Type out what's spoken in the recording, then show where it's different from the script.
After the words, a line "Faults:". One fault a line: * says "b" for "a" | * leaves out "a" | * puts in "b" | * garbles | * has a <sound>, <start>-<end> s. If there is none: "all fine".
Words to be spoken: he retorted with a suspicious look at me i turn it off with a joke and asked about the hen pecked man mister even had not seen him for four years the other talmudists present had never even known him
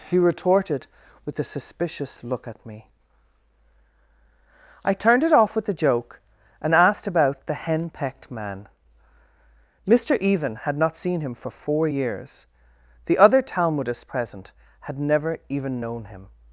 he retorted with a suspicious look at me i turned it off with a joke and asked about the hen pecked man mister even had not seen him for four years the other talmudists present had never even known him
Faults:
* says "turned" for "turn"